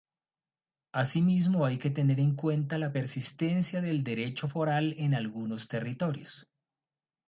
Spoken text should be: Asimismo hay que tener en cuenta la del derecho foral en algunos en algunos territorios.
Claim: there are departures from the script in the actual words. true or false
true